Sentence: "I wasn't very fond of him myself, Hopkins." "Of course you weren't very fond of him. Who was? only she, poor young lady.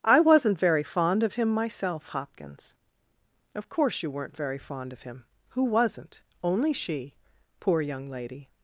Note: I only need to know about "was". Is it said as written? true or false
false